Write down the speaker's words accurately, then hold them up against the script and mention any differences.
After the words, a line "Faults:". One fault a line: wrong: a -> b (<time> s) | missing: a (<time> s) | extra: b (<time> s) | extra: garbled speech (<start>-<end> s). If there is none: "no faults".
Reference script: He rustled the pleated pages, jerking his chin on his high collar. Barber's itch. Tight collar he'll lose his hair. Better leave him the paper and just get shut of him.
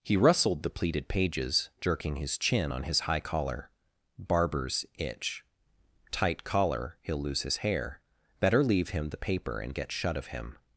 He rustled the pleated pages, jerking his chin on his high collar. Barber's itch. Tight collar he'll lose his hair. Better leave him the paper and get shut of him.
Faults:
missing: just (9.7 s)